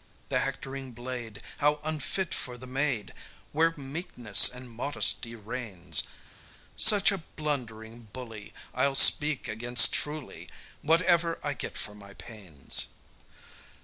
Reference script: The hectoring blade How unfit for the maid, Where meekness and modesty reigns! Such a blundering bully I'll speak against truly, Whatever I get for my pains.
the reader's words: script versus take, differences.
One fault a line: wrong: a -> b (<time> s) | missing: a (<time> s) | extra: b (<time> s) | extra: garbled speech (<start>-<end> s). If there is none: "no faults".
no faults